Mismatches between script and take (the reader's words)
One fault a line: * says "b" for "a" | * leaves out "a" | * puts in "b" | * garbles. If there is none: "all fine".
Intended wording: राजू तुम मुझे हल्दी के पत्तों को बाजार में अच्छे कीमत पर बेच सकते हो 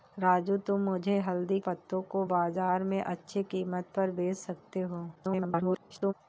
* leaves out "के"
* garbles